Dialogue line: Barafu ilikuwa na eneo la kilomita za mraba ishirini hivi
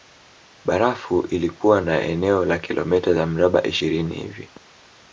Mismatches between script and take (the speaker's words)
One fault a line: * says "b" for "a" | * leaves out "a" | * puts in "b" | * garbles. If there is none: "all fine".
all fine